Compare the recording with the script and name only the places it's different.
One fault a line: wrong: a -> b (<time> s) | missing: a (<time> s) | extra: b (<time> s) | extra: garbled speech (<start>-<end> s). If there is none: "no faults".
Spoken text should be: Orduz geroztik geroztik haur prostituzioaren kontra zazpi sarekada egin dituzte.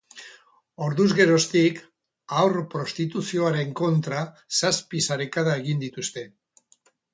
missing: geroztik (1.8 s)